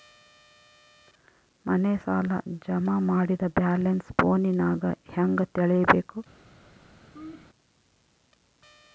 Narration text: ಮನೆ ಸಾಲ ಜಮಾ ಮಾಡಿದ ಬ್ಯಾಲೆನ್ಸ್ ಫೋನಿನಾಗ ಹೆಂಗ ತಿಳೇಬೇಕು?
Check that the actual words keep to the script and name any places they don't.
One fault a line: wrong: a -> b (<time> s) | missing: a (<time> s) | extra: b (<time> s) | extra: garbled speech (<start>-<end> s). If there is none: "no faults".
no faults